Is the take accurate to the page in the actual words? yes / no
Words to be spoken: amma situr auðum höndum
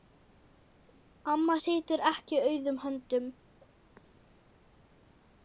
no